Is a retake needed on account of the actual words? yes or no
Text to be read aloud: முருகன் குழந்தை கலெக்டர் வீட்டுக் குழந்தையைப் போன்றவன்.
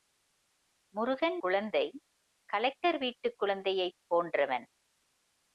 no